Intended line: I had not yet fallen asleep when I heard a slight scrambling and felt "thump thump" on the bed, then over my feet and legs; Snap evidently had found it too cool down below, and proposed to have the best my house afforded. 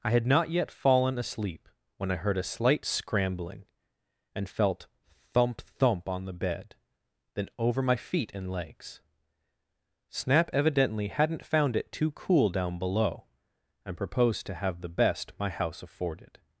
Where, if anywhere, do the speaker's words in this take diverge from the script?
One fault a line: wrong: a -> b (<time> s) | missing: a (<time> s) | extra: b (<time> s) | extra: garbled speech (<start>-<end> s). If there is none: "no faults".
wrong: had -> hadn't (11.1 s)